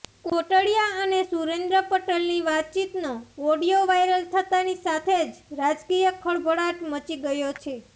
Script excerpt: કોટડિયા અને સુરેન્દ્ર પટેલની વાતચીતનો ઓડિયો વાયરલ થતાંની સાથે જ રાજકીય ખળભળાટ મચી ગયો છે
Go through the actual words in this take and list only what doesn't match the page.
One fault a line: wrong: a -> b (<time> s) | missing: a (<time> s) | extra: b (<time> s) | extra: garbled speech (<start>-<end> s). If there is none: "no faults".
no faults